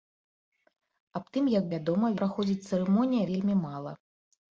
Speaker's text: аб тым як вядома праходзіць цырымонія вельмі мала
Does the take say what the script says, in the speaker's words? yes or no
yes